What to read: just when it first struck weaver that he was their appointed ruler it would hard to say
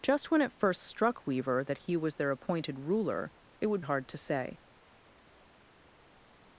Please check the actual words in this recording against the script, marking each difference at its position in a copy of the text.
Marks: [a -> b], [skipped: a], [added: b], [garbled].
just when it first struck weaver that he was their appointed ruler it would hard to say